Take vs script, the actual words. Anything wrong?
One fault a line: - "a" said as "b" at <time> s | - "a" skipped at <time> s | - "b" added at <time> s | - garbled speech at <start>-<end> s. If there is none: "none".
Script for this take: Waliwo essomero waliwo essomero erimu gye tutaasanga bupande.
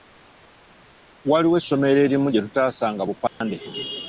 - "waliwo essomero" skipped at 2.0 s